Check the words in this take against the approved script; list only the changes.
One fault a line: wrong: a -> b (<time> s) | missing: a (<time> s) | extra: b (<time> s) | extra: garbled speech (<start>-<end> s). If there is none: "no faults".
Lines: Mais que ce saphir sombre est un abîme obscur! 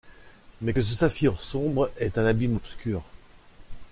no faults